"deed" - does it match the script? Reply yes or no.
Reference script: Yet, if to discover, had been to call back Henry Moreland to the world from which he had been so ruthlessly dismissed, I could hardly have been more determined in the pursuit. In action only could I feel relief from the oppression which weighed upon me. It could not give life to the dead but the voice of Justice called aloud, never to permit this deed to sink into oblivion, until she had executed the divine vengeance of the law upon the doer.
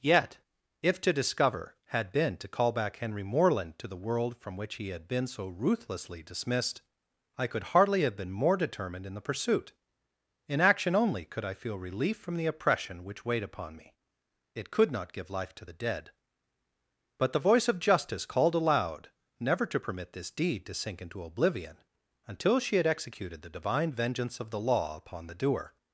yes